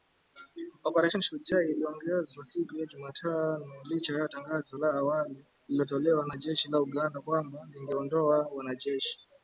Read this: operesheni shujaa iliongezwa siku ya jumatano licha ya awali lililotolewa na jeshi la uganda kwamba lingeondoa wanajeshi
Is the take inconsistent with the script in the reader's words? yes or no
yes